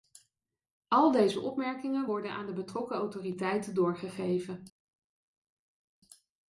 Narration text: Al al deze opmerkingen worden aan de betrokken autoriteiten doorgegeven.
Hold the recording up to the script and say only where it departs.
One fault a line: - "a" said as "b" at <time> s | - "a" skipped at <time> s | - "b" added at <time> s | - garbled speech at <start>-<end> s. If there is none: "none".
- "al" skipped at 1.1 s